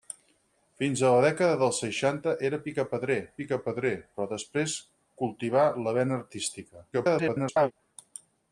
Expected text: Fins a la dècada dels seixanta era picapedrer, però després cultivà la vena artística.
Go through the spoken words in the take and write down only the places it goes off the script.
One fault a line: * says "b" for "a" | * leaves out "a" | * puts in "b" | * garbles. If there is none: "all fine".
* puts in "picapedrer"
* garbles